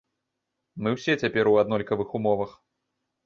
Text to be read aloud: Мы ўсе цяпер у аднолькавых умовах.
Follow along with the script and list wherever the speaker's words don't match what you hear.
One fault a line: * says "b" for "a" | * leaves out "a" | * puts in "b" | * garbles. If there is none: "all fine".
all fine